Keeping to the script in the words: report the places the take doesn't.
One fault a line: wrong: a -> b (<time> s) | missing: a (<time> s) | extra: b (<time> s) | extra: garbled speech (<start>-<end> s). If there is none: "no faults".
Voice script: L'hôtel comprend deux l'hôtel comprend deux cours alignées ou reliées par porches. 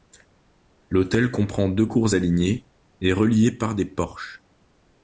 missing: l'hôtel comprend deux (1.9 s)
wrong: ou -> et (3.0 s)
extra: des (3.7 s)